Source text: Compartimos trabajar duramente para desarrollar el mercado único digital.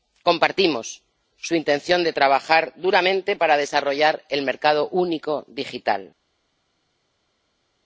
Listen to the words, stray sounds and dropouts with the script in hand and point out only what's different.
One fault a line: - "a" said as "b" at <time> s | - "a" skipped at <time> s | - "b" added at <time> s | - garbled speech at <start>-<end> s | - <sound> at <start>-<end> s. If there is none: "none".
- "su intención de" added at 1.4 s